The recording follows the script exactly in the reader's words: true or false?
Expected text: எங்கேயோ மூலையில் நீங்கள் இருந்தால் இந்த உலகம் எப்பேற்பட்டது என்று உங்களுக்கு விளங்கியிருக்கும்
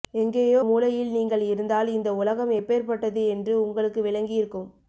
true